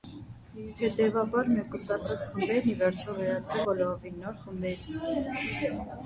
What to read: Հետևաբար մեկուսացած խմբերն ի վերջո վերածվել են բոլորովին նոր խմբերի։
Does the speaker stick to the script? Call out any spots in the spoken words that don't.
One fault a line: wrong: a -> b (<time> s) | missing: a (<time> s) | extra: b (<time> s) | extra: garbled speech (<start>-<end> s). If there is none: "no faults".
missing: են (3.6 s)